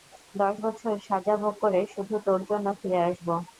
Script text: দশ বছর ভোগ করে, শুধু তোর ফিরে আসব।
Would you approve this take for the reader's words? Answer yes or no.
no